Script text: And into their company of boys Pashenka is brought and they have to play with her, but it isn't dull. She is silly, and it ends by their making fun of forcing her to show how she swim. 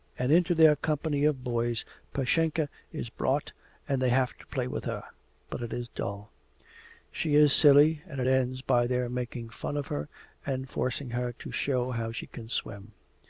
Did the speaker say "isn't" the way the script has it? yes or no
no